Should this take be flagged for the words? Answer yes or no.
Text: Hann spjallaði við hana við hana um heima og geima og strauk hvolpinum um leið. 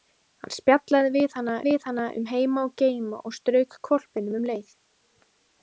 no